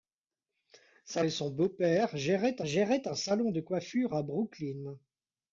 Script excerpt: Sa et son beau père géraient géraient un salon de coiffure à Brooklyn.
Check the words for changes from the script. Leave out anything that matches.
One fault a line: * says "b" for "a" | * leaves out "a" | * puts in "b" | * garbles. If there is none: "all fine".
all fine